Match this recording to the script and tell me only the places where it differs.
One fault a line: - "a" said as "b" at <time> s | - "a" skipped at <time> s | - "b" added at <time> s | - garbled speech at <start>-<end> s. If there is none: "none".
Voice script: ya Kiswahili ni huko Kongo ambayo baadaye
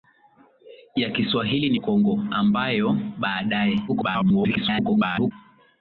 - "huko" skipped at 1.8 s
- garbled speech at 3.9-5.3 s